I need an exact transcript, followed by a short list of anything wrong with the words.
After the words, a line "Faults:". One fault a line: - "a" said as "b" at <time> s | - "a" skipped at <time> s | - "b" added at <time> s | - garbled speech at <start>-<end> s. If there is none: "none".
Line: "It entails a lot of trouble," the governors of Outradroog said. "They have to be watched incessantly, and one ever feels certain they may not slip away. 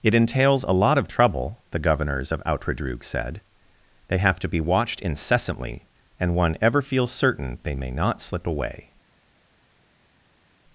"It entails a lot of trouble," the governors of Outradroog said. "They have to be watched incessantly, and one ever feels certain they may not slip away.
Faults:
none